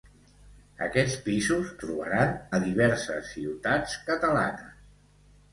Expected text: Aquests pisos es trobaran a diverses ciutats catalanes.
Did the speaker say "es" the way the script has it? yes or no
no